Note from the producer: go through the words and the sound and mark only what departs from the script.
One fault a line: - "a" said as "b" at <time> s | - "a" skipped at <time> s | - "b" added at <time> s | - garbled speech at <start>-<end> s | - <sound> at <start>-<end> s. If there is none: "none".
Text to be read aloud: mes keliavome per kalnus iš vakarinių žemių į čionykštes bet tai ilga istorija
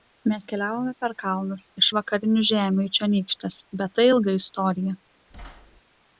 - thud at 5.3-5.8 s